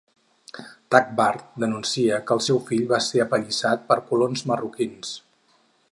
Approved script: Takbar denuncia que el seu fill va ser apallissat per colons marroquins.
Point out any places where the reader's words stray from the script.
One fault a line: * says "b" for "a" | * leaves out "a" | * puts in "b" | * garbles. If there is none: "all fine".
all fine